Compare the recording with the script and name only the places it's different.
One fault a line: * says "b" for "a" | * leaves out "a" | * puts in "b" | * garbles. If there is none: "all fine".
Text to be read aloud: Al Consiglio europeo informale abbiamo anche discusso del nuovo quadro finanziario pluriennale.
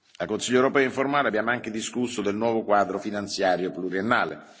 all fine